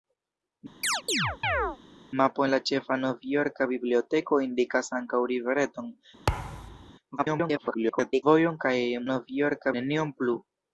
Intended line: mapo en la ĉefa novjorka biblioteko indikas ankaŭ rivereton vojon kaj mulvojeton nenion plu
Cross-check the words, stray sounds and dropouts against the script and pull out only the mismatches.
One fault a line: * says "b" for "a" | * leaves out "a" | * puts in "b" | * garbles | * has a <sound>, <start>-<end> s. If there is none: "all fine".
* has a chirp, 0.8-1.8 s
* has a thud, 6.3-6.9 s
* garbles
* says "novjorka" for "mulvojeton"